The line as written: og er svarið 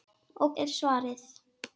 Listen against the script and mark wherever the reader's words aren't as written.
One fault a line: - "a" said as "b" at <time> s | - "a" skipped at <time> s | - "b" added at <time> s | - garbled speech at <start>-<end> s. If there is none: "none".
none